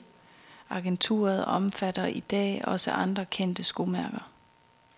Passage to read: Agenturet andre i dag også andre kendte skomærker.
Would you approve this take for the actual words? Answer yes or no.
no